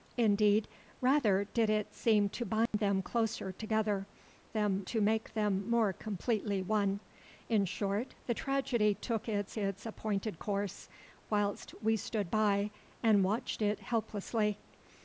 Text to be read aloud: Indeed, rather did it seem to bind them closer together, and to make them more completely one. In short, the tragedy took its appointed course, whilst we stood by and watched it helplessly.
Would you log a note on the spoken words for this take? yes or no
yes